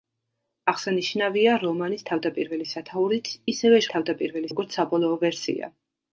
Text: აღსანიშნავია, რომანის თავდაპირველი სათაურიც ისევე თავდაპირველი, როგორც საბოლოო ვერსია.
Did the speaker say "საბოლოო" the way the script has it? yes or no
yes